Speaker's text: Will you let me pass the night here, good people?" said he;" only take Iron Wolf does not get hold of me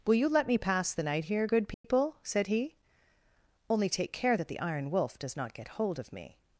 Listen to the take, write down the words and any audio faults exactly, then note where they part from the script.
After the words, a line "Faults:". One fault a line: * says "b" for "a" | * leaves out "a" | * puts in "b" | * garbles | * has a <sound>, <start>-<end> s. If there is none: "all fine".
Will you let me pass the night here, good people?" said he;" only take care that the Iron Wolf does not get hold of me
Faults:
* has a dropout, 1.7-1.8 s
* puts in "care that the"